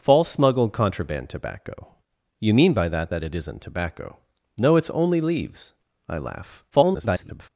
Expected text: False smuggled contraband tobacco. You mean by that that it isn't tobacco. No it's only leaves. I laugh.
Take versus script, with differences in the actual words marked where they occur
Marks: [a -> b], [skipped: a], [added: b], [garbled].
False smuggled contraband tobacco. You mean by that that it isn't tobacco. No it's only leaves. I laugh. [garbled]